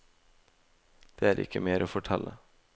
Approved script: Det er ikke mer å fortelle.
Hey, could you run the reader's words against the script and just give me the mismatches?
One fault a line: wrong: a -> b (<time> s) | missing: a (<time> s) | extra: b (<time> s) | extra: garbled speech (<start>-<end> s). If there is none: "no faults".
no faults